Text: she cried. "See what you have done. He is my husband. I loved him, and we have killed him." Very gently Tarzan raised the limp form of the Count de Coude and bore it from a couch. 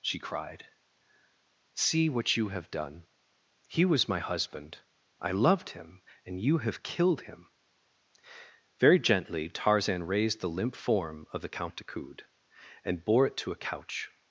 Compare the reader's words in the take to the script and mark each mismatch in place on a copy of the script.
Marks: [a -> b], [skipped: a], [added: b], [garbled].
she cried. "See what you have done. He [is -> was] my husband. I loved him, and [we -> you] have killed him." Very gently Tarzan raised the limp form of the Count de Coude and bore it [from -> to] a couch.